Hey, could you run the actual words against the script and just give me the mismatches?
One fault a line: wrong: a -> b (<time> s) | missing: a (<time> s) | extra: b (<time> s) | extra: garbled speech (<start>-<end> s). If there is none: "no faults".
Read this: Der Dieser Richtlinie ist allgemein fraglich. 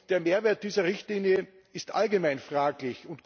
extra: Mehrwert (0.2 s)